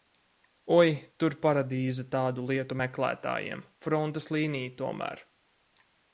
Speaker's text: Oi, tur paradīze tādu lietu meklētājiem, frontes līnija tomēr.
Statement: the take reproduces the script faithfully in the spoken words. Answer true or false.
true